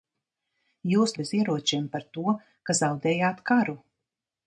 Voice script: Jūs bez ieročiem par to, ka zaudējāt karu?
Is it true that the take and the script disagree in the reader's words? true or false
false